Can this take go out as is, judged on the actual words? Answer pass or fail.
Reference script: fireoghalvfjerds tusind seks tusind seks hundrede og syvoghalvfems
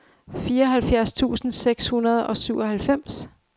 fail